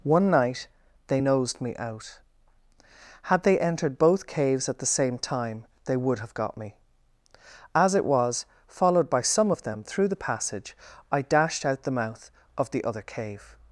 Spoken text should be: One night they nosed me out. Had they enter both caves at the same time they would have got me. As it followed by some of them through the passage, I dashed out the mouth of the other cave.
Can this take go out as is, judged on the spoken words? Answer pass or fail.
fail